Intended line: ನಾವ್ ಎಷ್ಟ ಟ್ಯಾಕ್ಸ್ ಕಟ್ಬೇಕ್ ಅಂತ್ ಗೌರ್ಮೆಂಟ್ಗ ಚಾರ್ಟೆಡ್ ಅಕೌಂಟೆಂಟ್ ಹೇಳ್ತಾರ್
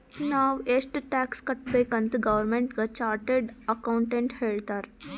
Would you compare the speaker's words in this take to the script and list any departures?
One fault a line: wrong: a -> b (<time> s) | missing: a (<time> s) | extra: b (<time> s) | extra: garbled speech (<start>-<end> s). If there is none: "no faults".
no faults